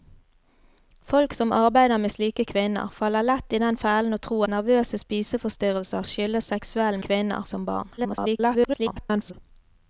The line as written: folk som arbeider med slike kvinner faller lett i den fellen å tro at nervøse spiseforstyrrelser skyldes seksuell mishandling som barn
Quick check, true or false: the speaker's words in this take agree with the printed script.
false